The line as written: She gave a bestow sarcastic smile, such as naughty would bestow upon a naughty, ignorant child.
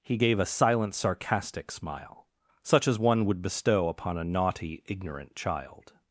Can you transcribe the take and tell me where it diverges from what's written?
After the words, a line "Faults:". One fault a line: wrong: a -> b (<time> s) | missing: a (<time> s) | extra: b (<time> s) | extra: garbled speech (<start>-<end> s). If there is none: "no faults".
He gave a silent sarcastic smile, such as one would bestow upon a naughty, ignorant child.
Faults:
wrong: She -> He (0.0 s)
wrong: bestow -> silent (0.4 s)
wrong: naughty -> one (3.0 s)